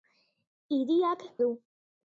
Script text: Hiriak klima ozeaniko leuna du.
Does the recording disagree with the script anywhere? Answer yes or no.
yes